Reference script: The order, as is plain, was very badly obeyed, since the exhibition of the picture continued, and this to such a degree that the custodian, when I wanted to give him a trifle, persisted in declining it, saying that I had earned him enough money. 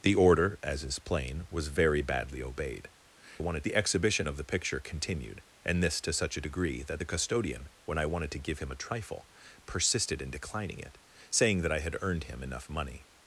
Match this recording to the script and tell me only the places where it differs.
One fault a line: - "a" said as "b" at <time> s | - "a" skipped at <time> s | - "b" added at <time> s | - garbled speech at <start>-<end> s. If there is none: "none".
- "since" said as "wanted" at 3.4 s